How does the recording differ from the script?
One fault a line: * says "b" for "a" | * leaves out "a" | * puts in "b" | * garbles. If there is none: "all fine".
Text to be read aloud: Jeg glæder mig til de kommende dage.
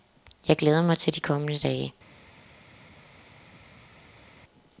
all fine